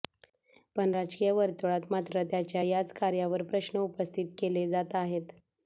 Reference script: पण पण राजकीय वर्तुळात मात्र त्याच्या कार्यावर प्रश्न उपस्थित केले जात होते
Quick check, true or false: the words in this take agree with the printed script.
false